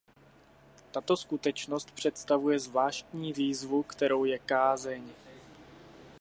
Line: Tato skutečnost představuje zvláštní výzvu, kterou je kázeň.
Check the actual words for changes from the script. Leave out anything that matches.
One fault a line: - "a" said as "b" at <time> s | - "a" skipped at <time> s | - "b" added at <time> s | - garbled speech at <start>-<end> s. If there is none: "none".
none